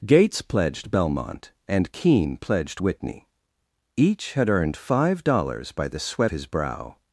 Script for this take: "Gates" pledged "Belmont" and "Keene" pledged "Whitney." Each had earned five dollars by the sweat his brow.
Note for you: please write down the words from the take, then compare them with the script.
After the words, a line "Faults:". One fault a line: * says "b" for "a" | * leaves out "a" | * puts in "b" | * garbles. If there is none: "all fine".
"Gates" pledged "Belmont" and "Keene" pledged "Whitney." Each had earned five dollars by the sweat his brow.
Faults:
all fine